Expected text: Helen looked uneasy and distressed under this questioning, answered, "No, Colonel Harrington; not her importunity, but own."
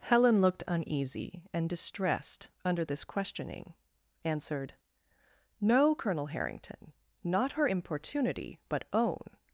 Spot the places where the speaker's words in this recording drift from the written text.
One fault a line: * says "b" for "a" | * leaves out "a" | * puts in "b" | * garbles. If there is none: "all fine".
all fine